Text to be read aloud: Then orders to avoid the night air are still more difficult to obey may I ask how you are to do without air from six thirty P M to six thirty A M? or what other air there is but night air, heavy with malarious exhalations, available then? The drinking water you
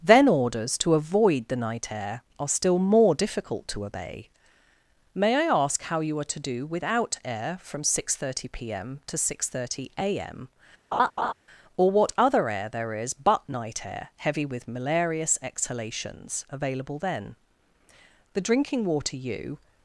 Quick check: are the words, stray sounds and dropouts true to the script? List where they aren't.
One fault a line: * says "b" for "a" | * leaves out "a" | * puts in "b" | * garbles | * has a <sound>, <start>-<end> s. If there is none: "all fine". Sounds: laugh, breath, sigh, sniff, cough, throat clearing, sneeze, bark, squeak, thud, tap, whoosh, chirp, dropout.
* has a laugh, 10.9-11.3 s